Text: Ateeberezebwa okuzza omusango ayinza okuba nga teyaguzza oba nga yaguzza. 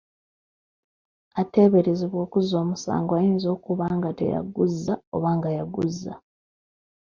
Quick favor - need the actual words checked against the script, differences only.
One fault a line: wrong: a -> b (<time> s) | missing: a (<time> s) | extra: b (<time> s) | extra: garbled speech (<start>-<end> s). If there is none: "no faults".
no faults